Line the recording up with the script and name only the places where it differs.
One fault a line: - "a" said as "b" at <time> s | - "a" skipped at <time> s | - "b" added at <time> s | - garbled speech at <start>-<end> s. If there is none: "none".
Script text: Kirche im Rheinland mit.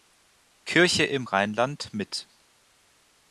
none